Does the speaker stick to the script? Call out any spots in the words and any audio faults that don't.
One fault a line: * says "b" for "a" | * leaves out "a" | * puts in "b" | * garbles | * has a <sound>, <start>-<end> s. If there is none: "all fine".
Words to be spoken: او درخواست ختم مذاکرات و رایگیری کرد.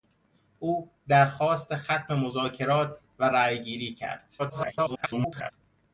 * garbles